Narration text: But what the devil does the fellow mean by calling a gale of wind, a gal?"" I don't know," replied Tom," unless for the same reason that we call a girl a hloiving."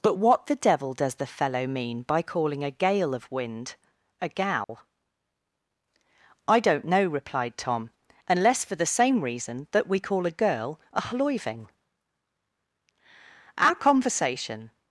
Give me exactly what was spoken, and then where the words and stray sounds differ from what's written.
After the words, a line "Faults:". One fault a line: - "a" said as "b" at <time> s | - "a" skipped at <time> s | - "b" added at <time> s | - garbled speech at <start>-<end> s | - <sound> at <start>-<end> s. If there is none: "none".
But what the devil does the fellow mean by calling a gale of wind, a gal?"" I don't know," replied Tom," unless for the same reason that we call a girl a hloiving." Our conversation
Faults:
- dropout at 4.6-4.7 s
- "Our conversation" added at 13.6 s